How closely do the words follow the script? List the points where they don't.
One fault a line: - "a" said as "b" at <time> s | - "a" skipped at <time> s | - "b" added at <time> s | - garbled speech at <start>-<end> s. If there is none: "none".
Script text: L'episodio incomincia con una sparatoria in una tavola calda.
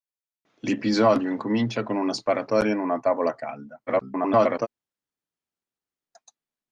- garbled speech at 3.9-4.7 s